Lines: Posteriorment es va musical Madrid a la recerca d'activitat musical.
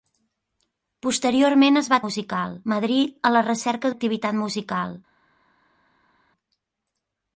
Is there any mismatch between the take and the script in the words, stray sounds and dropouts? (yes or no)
no